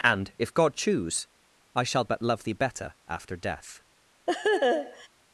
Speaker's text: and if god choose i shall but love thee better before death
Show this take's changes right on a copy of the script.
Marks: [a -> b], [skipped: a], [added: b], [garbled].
and if god choose i shall but love thee better [before -> after] death